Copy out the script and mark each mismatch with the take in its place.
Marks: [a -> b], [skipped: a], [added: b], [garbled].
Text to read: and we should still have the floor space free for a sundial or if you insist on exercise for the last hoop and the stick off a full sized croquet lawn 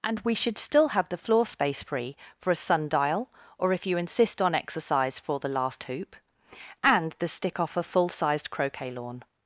and we should still have the floor space free for a sundial or if you insist on exercise for the last hoop and the stick off a full sized croquet lawn